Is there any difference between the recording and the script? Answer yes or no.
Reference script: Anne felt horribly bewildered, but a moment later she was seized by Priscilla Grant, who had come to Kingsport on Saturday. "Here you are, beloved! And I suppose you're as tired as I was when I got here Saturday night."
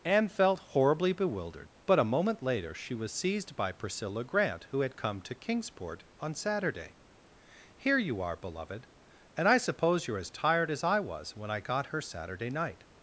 yes